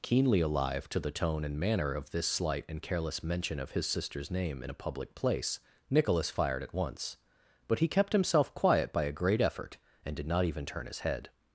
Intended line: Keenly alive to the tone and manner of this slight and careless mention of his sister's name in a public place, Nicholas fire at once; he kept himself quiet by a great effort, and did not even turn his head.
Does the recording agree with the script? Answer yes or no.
no